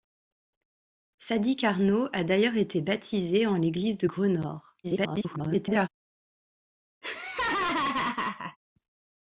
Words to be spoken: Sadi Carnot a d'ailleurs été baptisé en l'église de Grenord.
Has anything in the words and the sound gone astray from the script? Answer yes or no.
yes